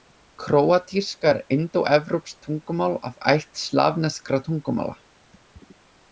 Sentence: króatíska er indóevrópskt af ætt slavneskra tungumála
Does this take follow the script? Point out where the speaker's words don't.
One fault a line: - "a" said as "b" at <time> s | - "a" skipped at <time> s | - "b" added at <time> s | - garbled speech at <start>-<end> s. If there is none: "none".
- "tungumál" added at 2.5 s